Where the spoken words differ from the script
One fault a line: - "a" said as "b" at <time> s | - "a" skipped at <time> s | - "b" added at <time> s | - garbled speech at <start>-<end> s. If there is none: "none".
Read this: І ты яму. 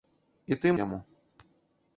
none